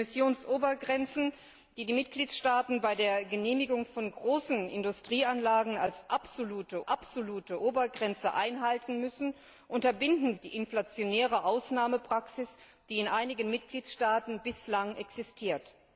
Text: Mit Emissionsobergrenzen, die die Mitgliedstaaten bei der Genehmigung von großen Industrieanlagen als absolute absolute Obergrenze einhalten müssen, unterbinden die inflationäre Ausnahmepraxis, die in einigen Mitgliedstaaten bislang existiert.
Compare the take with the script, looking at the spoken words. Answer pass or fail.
pass